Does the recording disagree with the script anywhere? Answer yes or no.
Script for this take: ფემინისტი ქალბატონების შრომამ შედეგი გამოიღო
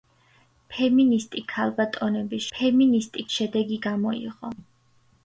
yes